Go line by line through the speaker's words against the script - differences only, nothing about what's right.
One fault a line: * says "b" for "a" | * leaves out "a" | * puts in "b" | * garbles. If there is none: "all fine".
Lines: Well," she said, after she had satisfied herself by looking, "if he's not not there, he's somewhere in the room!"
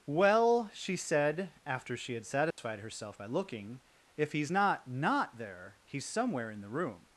all fine